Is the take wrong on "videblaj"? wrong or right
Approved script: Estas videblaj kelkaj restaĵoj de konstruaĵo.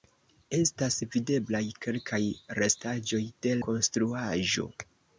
right